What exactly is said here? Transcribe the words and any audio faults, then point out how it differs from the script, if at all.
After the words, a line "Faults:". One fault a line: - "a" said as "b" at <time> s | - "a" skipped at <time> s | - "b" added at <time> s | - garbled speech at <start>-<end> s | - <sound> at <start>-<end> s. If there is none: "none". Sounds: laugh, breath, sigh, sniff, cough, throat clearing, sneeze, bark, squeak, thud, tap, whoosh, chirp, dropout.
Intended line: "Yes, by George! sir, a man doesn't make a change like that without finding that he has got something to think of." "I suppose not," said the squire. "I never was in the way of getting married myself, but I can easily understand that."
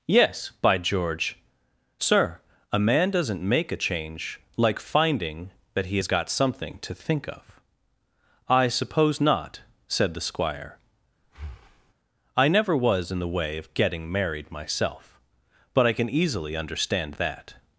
"Yes, by George! sir, a man doesn't make a change like finding that he has got something to think of." "I suppose not," said the squire. "I never was in the way of getting married myself, but I can easily understand that."
Faults:
- "that without" skipped at 4.8 s
- breath at 11.2-11.9 s